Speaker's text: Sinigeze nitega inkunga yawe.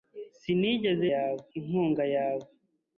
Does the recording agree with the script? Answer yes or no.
no